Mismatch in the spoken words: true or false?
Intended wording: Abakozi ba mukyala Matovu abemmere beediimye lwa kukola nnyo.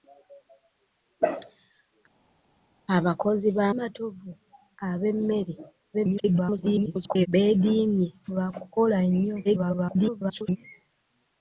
true